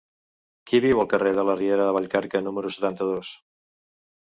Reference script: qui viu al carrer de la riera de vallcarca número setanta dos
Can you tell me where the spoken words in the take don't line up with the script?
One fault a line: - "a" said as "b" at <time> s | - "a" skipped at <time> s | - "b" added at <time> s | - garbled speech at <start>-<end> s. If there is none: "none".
none